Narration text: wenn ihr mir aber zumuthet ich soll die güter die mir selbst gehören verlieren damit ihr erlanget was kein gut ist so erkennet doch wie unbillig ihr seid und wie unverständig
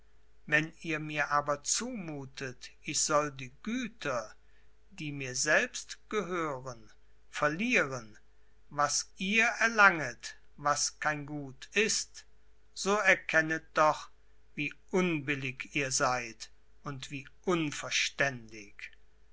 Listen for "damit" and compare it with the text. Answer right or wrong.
wrong